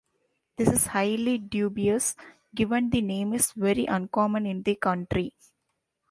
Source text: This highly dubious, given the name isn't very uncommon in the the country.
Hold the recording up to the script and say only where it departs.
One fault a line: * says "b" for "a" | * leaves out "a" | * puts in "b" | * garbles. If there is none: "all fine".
* puts in "is"
* says "is" for "isn't"
* leaves out "the"